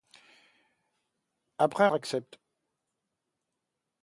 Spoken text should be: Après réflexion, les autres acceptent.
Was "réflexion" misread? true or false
true